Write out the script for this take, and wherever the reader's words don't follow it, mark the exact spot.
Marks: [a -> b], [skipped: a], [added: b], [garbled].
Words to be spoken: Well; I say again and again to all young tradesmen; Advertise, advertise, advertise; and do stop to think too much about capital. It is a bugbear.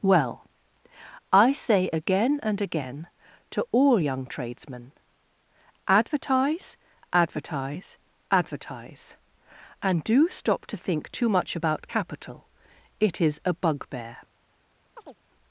Well; I say again and again to all young tradesmen; Advertise, advertise, advertise; and do stop to think too much about capital. It is a bugbear.